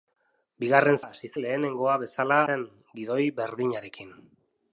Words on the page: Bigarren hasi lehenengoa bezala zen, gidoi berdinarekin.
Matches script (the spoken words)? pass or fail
pass